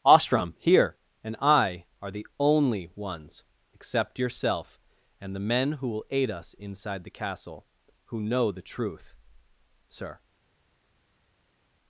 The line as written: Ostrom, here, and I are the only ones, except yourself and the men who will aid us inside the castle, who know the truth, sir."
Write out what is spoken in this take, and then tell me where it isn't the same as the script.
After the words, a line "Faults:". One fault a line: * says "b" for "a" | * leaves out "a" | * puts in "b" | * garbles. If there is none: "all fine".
Ostrom, here, and I are the only ones, except yourself and the men who will aid us inside the castle, who know the truth, sir."
Faults:
all fine